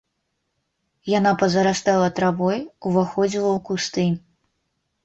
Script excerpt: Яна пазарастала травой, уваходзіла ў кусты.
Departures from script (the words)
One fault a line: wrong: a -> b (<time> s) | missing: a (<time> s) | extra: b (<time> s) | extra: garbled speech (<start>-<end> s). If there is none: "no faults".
no faults